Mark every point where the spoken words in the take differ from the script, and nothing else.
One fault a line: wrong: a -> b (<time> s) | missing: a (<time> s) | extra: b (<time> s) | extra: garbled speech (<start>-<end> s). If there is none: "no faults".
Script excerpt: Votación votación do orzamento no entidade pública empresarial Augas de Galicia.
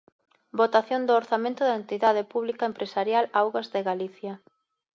missing: votación (1.0 s)
wrong: no -> da (1.6 s)